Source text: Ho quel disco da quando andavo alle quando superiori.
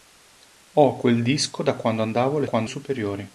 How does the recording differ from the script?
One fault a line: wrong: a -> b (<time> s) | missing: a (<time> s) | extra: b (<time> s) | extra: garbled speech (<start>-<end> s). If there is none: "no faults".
no faults